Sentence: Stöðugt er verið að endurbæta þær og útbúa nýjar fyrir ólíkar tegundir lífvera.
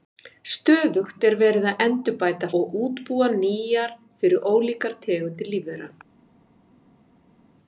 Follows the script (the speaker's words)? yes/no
no